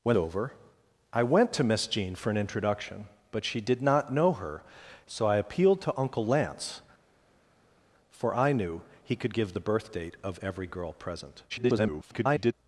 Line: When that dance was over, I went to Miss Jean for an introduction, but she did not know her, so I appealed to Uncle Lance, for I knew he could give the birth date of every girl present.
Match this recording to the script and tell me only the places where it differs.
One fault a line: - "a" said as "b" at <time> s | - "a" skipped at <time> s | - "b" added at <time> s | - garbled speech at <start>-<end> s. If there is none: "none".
- "that dance was" skipped at 0.2 s
- garbled speech at 11.5-12.5 s